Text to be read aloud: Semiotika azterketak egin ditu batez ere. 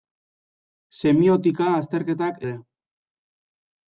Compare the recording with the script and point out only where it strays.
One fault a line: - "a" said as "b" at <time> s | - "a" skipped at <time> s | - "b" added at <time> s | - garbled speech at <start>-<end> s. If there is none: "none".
- "egin ditu batez" skipped at 2.4 s